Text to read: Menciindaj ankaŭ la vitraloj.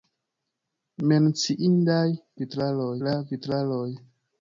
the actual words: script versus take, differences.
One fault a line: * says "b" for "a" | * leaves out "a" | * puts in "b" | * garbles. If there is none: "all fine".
* says "vitraloj" for "ankaŭ"